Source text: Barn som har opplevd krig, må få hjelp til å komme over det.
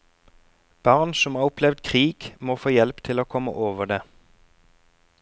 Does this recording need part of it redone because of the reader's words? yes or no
no